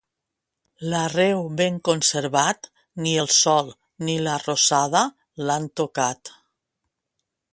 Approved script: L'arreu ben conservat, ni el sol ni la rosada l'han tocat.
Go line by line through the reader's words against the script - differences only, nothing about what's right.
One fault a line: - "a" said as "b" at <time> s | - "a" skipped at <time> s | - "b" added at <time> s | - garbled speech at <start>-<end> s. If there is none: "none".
none